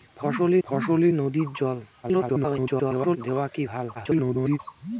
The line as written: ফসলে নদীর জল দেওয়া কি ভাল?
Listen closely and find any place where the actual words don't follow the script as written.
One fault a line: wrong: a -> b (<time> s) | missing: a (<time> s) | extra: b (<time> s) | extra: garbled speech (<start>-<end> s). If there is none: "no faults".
extra: ফসলে (0.6 s)
extra: garbled speech (2.0-3.2 s)
extra: garbled speech (3.9-4.6 s)